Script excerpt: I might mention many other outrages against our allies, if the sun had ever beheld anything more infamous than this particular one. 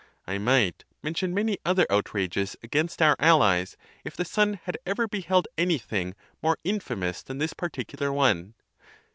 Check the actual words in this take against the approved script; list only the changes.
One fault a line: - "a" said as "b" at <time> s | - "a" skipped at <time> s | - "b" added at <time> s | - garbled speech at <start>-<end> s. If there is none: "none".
none